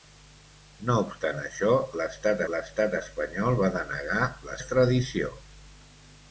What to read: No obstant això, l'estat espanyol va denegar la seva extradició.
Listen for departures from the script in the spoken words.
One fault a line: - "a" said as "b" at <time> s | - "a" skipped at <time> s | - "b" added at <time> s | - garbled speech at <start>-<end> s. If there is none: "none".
- "l'estat" added at 2.5 s
- "seva" skipped at 4.6 s